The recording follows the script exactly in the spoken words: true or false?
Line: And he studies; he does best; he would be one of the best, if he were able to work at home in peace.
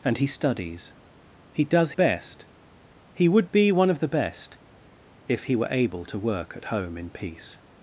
true